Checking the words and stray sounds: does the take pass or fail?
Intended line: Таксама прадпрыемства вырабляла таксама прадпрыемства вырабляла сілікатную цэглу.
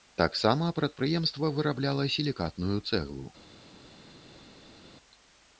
fail